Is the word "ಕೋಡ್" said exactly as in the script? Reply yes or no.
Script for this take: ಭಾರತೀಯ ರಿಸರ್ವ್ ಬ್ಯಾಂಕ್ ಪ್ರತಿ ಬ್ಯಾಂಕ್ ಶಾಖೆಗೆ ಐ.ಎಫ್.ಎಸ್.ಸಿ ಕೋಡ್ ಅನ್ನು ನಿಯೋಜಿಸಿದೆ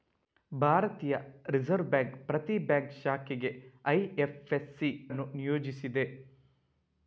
no